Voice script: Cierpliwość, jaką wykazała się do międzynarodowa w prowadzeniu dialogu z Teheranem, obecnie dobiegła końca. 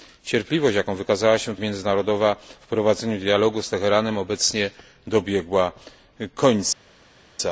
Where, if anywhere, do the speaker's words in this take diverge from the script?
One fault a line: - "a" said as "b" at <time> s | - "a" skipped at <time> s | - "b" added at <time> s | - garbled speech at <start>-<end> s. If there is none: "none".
none